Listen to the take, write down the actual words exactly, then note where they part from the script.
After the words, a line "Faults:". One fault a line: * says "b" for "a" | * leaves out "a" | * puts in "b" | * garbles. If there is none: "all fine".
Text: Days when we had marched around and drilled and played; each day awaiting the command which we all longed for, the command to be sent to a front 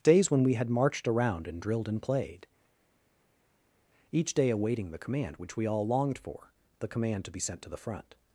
Days when we had marched around and drilled and played; each day awaiting the command which we all longed for, the command to be sent to the front
Faults:
* says "the" for "a"